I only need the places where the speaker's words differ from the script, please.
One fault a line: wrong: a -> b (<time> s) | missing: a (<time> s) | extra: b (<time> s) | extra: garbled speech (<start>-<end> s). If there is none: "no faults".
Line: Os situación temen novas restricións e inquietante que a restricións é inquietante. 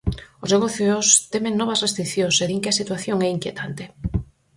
wrong: situación -> negocios (0.6 s)
wrong: inquietante -> din (2.5 s)
wrong: restricións -> situación (2.8 s)